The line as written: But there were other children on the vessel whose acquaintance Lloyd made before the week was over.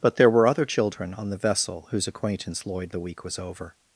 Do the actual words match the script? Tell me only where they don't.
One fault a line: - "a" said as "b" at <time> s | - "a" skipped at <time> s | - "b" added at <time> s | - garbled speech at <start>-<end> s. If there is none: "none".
- "made before" skipped at 2.9 s